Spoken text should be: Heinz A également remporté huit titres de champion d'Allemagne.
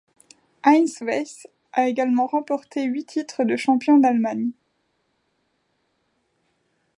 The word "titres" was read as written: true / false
true